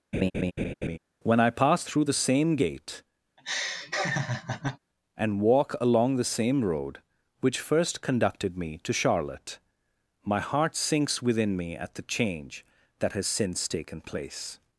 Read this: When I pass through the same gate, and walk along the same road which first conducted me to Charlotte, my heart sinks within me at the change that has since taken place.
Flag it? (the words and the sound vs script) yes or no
yes